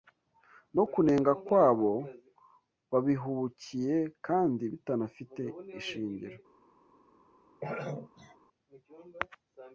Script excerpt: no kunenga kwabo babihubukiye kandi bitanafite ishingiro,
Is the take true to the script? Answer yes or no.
yes